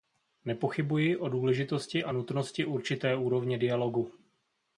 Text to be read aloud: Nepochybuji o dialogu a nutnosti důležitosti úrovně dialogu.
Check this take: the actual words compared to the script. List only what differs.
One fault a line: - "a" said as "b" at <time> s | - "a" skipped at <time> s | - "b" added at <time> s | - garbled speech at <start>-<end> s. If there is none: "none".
- "dialogu" said as "důležitosti" at 1.3 s
- "důležitosti" said as "určité" at 2.7 s